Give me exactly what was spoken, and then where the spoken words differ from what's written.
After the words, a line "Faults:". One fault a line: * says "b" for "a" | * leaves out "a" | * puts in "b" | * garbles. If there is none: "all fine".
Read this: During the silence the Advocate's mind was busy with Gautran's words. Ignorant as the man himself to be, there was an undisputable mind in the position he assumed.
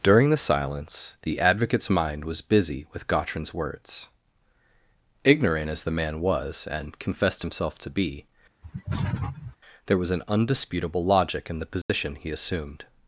During the silence the Advocate's mind was busy with Gautran's words. Ignorant as the man was, and confessed himself to be, there was an undisputable logic in the position he assumed.
Faults:
* puts in "was and confessed"
* says "logic" for "mind"